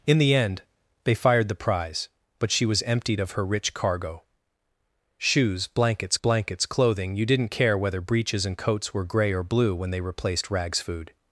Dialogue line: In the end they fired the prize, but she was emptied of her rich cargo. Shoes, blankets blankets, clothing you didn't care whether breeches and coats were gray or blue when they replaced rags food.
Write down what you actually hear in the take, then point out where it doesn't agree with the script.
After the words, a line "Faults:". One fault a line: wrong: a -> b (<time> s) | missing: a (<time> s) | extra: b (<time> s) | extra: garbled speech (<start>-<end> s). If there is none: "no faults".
In the end they fired the prize, but she was emptied of her rich cargo. Shoes, blankets blankets, clothing you didn't care whether breeches and coats were gray or blue when they replaced rags food.
Faults:
no faults